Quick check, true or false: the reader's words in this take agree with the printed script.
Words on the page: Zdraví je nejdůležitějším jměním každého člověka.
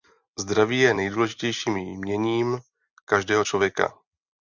true